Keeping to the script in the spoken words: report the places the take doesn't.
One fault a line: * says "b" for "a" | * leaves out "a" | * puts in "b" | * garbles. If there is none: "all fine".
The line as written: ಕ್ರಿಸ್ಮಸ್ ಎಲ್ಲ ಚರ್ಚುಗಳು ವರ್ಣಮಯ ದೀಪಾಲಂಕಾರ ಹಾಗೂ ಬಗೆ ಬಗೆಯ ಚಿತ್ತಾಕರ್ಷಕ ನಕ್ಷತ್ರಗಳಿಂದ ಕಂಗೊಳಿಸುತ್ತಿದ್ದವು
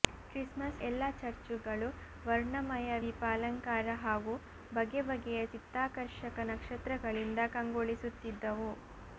all fine